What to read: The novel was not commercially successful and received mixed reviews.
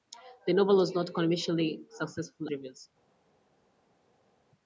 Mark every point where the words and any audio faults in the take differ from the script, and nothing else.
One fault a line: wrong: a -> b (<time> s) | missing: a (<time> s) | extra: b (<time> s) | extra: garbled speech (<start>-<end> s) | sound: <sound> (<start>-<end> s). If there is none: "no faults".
missing: and received mixed (2.5 s)